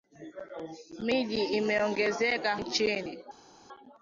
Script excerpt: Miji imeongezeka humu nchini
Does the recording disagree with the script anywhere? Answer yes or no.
yes